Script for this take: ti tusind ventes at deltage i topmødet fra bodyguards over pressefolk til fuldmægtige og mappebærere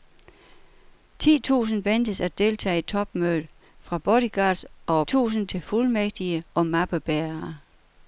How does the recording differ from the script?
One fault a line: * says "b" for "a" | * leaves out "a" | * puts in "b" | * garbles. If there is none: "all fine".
* says "tusind" for "pressefolk"